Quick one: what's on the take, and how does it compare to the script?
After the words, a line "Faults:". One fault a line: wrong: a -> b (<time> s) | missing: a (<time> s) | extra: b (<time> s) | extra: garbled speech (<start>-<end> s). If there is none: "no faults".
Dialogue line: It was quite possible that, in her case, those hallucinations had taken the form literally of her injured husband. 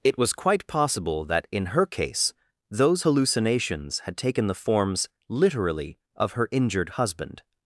It was quite possible that, in her case, those hallucinations had taken the forms literally of her injured husband.
Faults:
wrong: form -> forms (4.5 s)